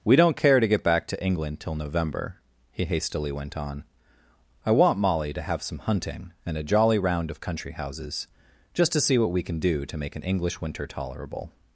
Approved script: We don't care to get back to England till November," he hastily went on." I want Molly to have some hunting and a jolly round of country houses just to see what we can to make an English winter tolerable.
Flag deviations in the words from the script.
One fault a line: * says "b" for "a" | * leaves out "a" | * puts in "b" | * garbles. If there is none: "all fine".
* puts in "do"